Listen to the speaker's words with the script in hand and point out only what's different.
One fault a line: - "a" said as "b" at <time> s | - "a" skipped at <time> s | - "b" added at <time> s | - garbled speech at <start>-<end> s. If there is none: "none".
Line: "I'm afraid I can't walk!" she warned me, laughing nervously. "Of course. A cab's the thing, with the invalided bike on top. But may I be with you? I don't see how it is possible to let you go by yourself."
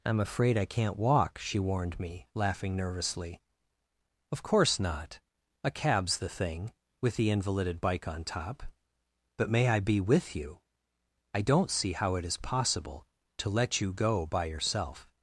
- "not" added at 4.8 s